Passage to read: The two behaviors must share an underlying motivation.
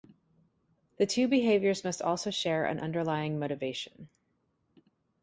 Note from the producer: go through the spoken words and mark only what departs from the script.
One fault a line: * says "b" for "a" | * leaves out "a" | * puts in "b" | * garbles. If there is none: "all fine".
* puts in "also"